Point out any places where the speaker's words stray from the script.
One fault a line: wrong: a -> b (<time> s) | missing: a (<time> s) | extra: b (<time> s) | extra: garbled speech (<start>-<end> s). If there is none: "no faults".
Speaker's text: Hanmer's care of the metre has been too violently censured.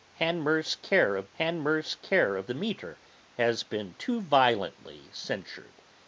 extra: hanmer's care of (1.3 s)